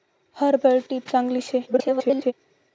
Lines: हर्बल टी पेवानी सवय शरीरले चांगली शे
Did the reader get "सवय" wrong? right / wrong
wrong